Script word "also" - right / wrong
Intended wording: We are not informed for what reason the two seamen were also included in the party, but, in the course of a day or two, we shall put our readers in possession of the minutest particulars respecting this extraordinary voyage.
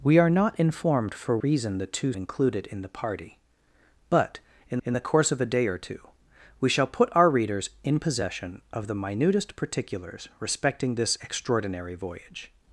wrong